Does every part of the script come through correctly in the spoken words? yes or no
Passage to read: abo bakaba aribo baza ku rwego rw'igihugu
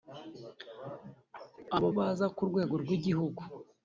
no